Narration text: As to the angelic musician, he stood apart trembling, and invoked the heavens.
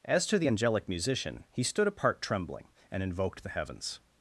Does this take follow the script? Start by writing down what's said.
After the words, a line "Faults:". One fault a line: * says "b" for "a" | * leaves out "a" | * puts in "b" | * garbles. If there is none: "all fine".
As to the angelic musician, he stood apart trembling, and invoked the heavens.
Faults:
all fine